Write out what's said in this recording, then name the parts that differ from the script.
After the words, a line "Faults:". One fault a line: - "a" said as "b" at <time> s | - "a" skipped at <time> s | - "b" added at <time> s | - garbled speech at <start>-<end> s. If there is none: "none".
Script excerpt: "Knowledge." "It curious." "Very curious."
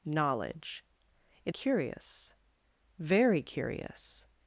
"Knowledge." "It curious." "Very curious."
Faults:
none